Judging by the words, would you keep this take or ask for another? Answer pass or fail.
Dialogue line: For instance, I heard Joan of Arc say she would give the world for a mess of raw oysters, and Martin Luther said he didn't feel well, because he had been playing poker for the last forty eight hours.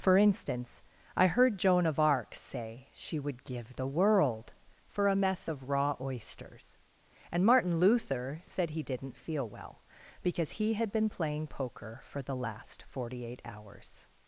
pass